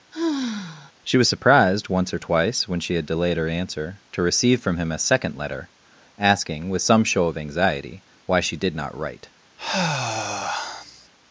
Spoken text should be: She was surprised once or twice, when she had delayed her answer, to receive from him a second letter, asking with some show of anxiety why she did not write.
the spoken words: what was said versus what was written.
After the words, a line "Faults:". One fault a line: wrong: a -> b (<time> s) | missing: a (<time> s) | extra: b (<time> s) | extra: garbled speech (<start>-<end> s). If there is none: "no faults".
She was surprised once or twice, when she had delayed her answer, to receive from him a second letter, asking with some show of anxiety why she did not write.
Faults:
no faults